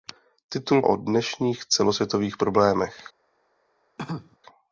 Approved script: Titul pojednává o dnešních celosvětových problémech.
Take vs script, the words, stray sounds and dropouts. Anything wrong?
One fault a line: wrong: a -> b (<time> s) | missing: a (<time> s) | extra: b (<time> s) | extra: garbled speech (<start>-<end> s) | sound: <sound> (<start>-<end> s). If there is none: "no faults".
missing: pojednává (0.8 s)
sound: cough (4.0-4.4 s)